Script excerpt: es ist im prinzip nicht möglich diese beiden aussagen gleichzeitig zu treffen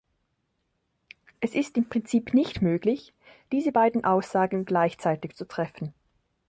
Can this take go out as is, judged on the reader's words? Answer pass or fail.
pass